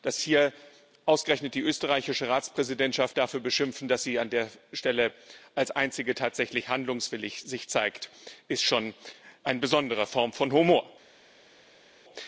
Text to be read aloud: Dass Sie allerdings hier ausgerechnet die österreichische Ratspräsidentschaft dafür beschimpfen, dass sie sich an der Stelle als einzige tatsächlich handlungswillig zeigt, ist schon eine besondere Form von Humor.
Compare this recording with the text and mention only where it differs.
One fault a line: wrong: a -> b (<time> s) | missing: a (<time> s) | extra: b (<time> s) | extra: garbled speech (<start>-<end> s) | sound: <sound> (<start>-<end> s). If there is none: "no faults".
missing: Sie allerdings (0.2 s)